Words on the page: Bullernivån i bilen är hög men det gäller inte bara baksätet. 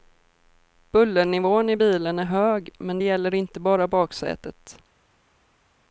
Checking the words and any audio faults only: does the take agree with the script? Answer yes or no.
yes